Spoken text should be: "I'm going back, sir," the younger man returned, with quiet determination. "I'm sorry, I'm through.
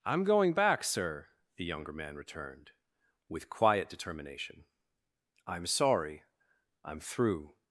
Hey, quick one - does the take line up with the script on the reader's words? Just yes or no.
yes